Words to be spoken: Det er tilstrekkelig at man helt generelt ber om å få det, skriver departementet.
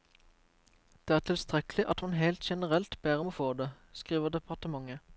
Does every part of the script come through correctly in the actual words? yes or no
yes